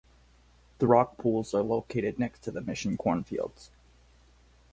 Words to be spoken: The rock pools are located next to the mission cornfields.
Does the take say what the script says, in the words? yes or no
yes